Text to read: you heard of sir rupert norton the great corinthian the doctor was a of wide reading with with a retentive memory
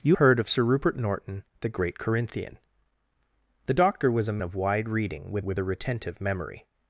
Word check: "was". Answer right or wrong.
right